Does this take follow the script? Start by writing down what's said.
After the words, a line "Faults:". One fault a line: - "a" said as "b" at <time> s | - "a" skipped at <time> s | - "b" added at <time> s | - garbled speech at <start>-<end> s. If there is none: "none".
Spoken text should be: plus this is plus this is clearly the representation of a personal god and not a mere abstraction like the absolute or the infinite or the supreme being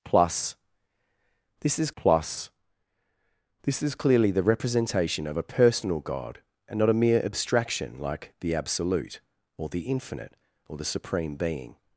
plus this is plus this is clearly the representation of a personal god and not a mere abstraction like the absolute or the infinite or the supreme being
Faults:
none